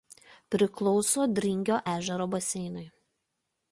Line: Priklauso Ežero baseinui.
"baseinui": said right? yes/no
yes